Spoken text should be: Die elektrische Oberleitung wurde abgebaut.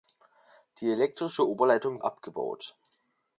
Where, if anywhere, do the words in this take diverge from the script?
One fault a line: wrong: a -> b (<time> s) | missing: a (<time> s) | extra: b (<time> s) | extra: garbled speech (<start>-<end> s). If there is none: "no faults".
missing: wurde (2.0 s)